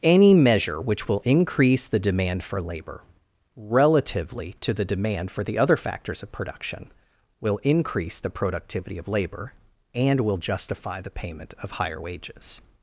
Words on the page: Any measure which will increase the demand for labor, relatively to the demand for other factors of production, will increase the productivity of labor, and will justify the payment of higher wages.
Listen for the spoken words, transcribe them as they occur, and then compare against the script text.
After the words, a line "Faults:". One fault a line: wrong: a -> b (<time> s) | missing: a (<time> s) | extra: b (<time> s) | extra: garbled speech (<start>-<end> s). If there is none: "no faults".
Any measure which will increase the demand for labor, relatively to the demand for the other factors of production, will increase the productivity of labor, and will justify the payment of higher wages.
Faults:
extra: the (5.4 s)